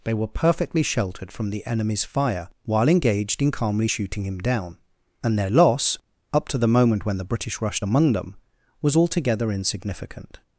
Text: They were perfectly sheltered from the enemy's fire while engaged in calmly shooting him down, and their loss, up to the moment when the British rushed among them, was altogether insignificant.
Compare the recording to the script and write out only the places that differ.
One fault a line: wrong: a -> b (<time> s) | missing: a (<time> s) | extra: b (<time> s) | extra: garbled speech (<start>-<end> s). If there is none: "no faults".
no faults